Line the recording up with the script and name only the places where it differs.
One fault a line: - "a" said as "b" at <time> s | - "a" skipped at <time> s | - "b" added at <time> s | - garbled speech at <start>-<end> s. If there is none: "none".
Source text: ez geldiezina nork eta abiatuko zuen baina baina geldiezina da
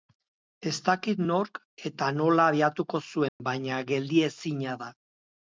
- "geldiezina" said as "dakit" at 0.9 s
- "nola" added at 2.2 s
- "baina" skipped at 3.8 s